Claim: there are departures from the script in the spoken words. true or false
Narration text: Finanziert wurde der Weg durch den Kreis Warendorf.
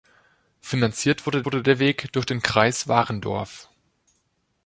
true